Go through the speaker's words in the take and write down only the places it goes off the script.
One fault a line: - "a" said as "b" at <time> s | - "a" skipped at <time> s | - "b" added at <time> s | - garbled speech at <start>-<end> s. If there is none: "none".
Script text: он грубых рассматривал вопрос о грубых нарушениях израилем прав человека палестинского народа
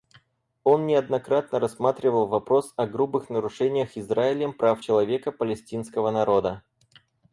- "грубых" said as "неоднократно" at 0.9 s